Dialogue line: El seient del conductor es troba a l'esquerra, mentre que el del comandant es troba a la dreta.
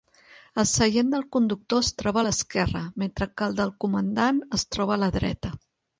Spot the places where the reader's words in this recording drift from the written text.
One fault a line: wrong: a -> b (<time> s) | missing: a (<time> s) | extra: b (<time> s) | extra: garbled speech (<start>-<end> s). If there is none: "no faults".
no faults